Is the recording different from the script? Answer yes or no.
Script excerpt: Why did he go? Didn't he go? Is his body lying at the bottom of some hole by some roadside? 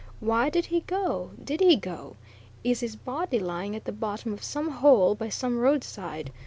yes